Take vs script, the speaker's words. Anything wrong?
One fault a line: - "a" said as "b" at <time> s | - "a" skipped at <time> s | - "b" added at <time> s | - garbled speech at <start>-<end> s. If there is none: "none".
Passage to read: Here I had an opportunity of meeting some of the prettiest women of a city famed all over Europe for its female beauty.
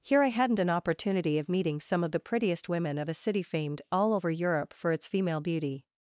- "had" said as "hadn't" at 0.3 s